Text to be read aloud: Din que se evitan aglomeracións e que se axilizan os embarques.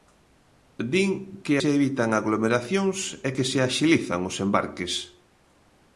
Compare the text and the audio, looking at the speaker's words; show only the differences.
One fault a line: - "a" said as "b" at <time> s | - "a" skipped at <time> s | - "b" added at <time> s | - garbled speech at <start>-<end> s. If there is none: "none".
none